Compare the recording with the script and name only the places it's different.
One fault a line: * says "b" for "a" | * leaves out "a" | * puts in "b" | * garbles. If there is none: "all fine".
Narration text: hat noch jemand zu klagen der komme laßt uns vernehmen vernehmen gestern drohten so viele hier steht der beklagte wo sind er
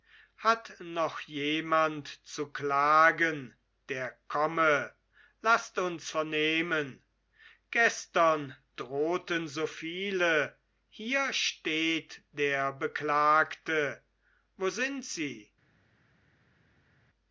* leaves out "vernehmen"
* says "sie" for "er"